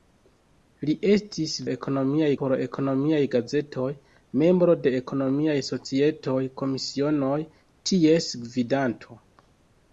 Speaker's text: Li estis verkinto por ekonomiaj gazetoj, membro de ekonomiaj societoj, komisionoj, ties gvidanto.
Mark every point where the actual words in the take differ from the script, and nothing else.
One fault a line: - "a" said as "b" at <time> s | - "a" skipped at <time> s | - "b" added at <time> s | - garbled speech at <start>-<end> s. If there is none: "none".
- "verkinto" said as "ekonomiaj" at 1.7 s